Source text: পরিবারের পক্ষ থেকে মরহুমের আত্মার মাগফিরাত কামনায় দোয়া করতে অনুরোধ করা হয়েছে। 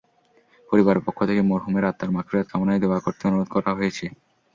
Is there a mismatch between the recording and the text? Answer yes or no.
no